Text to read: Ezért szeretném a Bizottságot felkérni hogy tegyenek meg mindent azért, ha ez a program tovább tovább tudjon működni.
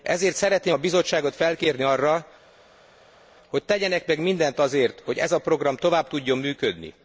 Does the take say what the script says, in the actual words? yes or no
no